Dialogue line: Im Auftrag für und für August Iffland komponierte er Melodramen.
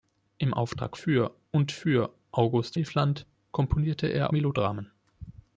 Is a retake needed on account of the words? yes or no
no